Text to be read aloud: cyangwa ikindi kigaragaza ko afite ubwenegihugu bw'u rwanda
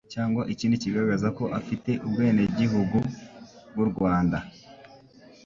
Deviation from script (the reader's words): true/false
false